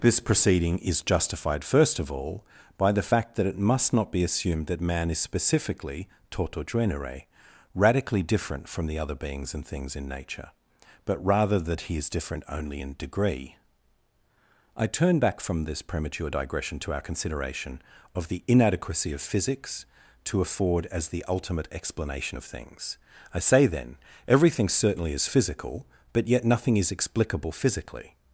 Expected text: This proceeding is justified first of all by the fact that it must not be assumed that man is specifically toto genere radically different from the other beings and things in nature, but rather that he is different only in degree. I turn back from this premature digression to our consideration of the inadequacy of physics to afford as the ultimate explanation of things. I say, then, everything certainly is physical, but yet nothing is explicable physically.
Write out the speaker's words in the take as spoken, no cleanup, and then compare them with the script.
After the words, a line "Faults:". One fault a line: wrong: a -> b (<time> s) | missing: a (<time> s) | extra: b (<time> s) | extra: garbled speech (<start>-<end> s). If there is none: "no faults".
This proceeding is justified first of all by the fact that it must not be assumed that man is specifically toto genere radically different from the other beings and things in nature, but rather that he is different only in degree. I turn back from this premature digression to our consideration of the inadequacy of physics to afford as the ultimate explanation of things. I say, then, everything certainly is physical, but yet nothing is explicable physically.
Faults:
no faults